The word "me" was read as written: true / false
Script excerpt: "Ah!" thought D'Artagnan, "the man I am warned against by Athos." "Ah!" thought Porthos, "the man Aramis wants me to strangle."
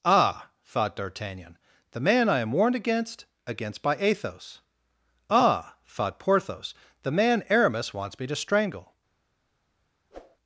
true